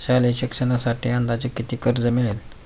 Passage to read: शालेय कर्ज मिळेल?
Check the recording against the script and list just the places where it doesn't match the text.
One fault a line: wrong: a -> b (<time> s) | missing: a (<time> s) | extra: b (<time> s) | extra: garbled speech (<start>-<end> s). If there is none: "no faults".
extra: शिक्षणासाठी अंदाजे किती (0.3 s)